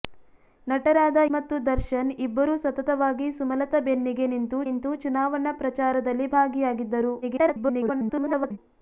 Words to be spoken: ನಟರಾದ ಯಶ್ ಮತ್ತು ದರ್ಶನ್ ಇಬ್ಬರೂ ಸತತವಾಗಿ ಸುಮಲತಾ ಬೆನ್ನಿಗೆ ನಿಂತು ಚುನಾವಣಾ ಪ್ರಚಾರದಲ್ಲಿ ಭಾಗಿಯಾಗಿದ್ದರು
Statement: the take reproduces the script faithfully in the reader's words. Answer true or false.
false